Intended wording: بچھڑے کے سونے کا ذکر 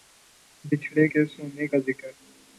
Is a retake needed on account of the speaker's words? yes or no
no